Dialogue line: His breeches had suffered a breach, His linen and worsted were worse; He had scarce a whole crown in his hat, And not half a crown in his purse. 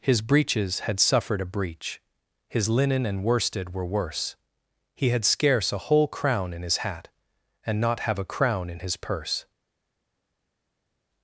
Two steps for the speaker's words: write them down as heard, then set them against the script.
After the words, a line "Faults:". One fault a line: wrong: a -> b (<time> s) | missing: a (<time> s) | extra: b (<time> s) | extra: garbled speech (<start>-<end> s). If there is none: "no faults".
His breeches had suffered a breach, His linen and worsted were worse; He had scarce a whole crown in his hat, And not have a crown in his purse.
Faults:
wrong: half -> have (8.0 s)